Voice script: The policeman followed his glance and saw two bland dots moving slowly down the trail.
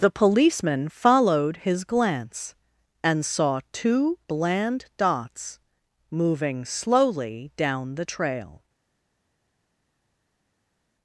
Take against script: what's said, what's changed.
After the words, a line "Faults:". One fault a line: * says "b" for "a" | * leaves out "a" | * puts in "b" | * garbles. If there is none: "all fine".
The policeman followed his glance and saw two bland dots moving slowly down the trail.
Faults:
all fine